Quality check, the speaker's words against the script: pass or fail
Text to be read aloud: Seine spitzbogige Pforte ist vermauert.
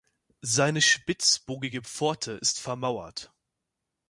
pass